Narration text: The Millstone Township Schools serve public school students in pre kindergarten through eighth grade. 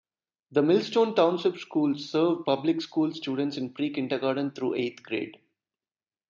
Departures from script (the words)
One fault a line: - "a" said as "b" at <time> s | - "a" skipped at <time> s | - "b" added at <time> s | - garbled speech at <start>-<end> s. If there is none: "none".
none